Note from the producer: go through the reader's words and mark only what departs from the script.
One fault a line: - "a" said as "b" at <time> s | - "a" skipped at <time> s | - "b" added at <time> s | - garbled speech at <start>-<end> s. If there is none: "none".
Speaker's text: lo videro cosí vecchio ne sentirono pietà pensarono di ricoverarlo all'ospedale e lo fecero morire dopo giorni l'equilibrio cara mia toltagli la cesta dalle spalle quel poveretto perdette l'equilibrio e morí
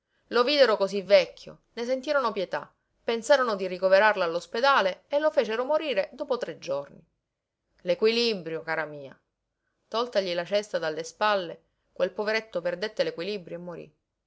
- "tre" added at 6.4 s